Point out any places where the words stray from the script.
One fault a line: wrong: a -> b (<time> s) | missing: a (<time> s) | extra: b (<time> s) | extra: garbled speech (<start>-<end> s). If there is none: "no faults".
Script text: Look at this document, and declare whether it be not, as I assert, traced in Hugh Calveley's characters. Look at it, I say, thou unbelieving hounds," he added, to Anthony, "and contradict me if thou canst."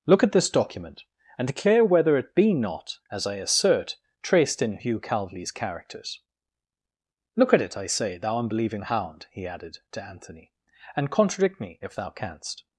wrong: hounds -> hound (8.8 s)